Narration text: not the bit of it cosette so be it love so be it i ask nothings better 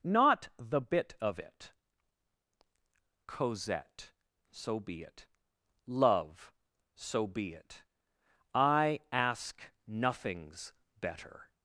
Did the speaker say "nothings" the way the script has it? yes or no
yes